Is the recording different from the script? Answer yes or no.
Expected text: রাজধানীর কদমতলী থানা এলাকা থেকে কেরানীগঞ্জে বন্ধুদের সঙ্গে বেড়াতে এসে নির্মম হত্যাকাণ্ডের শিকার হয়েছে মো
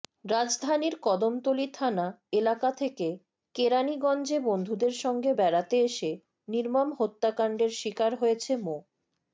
no